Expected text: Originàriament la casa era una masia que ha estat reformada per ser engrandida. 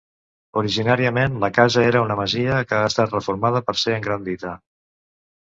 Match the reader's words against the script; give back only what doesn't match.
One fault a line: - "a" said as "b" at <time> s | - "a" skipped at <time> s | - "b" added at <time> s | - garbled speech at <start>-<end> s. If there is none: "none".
none